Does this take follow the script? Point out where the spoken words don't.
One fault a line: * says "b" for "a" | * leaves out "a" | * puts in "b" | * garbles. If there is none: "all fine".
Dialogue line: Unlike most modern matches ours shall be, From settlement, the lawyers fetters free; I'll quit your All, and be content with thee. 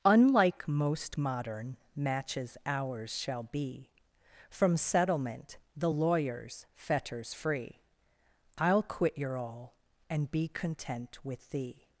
all fine